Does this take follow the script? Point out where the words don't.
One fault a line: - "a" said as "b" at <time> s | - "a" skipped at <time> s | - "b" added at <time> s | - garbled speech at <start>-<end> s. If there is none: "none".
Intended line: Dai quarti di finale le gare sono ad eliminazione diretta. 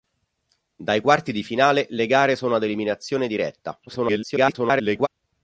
- garbled speech at 3.9-5.1 s